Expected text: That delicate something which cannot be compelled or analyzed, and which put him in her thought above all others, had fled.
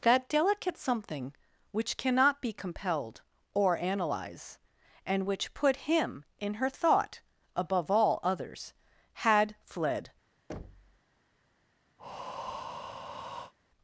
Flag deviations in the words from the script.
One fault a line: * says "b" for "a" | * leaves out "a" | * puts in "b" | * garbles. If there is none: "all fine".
* says "analyze" for "analyzed"